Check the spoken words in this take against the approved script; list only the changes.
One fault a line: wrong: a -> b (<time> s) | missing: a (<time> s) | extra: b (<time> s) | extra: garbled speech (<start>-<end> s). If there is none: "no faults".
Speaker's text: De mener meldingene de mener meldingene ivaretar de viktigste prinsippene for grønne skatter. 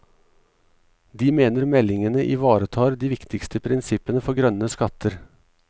missing: de mener meldingene (2.2 s)